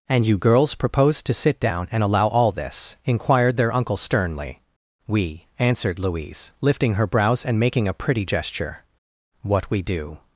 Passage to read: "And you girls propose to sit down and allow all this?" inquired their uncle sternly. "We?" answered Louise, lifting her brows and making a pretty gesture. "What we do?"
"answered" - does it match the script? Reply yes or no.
yes